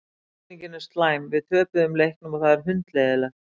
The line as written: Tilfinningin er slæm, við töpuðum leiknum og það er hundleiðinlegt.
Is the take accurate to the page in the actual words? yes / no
yes